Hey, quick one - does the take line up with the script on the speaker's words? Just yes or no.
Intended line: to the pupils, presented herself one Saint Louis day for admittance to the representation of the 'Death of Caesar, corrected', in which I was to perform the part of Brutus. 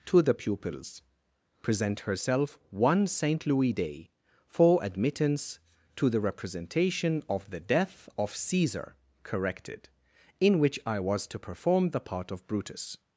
no